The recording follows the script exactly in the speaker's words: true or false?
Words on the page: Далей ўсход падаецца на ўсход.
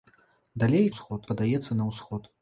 true